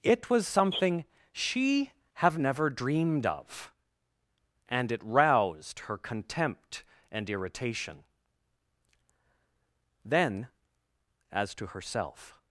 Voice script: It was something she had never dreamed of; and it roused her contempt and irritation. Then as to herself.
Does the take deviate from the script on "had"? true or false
true